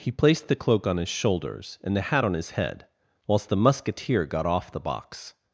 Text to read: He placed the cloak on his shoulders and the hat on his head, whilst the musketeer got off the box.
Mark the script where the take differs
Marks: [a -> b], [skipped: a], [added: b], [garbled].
He placed the cloak on his shoulders and the hat on his head, whilst the musketeer got off the box.